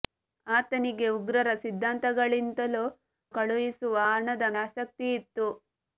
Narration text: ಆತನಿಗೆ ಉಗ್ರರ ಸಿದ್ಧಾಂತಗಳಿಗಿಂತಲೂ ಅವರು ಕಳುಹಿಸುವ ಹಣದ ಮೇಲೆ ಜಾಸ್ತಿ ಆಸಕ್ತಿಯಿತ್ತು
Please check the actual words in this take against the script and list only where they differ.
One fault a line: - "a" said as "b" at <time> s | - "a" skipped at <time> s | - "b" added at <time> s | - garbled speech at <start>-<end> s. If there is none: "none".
- "ಅವರು" skipped at 2.8 s
- "ಮೇಲೆ ಜಾಸ್ತಿ" skipped at 4.5 s